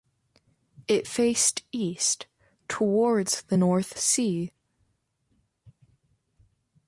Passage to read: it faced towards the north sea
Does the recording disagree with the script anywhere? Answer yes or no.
yes